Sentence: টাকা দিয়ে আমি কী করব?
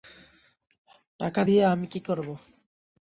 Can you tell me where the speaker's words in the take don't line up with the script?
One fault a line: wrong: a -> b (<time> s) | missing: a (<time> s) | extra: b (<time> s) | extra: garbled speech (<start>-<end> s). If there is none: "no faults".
no faults